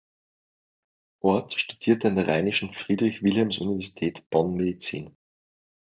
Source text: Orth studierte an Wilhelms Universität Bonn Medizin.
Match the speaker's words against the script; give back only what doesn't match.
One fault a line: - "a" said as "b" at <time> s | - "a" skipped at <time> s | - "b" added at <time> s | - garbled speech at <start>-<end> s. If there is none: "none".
- "der Rheinischen Friedrich" added at 2.1 s